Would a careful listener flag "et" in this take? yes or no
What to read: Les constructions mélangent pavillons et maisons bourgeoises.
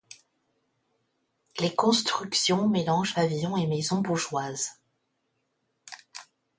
no